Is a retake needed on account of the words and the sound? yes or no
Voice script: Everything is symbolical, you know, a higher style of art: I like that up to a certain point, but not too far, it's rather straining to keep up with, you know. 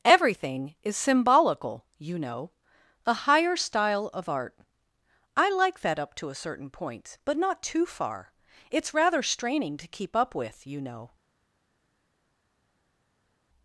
no